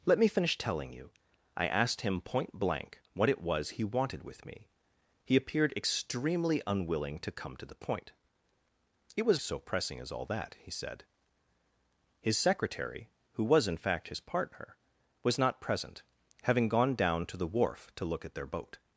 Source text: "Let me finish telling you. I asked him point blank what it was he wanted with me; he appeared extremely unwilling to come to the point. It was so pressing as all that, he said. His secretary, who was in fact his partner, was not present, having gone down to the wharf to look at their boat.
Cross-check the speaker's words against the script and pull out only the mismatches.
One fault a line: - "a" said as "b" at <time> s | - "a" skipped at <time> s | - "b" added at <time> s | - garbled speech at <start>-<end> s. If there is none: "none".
none